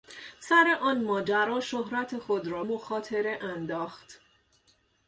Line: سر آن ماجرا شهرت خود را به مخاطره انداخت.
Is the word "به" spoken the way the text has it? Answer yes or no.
no